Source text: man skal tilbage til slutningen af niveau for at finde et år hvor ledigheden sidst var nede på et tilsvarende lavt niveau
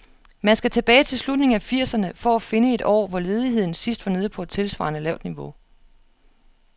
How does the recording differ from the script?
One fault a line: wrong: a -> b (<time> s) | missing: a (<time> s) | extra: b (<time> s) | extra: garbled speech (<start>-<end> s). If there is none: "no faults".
wrong: niveau -> firserne (1.6 s)